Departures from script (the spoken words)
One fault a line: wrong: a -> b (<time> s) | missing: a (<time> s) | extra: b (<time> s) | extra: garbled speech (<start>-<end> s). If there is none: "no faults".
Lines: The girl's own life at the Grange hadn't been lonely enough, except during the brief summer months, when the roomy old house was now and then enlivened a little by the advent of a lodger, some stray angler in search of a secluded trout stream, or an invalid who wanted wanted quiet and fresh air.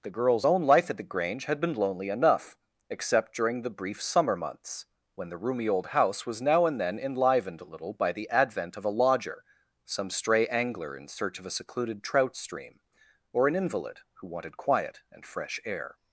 wrong: hadn't -> had (1.4 s)
missing: wanted (14.6 s)